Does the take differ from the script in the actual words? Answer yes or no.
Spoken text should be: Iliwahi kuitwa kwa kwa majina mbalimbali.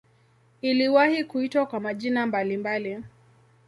yes